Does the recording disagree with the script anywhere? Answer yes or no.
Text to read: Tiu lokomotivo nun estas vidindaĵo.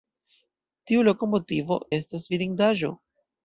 yes